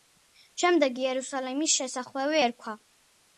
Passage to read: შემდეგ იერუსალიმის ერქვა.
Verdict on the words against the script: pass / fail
fail